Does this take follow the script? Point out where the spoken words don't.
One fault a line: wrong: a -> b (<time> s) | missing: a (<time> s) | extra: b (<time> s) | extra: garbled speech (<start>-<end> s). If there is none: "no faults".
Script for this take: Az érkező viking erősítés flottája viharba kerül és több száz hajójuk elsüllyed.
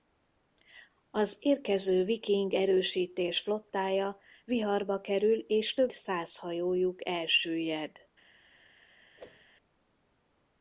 no faults